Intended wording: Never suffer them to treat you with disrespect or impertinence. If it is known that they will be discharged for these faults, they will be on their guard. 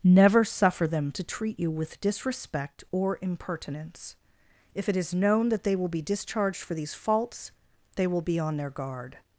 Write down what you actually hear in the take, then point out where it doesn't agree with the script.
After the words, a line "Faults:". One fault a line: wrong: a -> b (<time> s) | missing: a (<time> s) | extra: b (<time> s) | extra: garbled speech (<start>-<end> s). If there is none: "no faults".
Never suffer them to treat you with disrespect or impertinence. If it is known that they will be discharged for these faults, they will be on their guard.
Faults:
no faults